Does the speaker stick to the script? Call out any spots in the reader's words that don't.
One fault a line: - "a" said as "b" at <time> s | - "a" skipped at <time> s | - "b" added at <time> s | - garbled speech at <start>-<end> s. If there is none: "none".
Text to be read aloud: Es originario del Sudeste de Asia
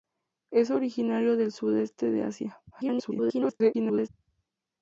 - garbled speech at 2.7-4.1 s